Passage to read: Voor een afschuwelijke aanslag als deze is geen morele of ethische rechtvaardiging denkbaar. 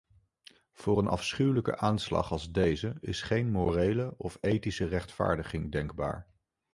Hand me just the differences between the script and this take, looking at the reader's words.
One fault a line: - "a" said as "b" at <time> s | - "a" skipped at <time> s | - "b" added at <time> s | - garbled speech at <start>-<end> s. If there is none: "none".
none